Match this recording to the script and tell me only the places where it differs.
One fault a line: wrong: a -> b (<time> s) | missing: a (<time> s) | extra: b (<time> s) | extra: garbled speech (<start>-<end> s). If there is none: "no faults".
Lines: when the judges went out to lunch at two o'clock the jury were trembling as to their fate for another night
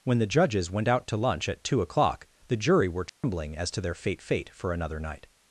extra: fate (4.2 s)